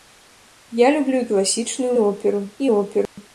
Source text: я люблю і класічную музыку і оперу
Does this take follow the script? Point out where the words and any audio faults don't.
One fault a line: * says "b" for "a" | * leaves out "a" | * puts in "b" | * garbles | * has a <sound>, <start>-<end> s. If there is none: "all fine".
* says "оперу" for "музыку"
* has a dropout, 3.1-3.2 s